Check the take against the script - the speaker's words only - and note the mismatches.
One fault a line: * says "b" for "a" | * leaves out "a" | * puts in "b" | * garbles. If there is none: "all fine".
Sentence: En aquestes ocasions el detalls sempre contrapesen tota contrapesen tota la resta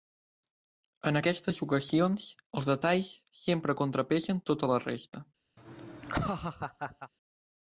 * says "els" for "el"
* leaves out "contrapesen tota"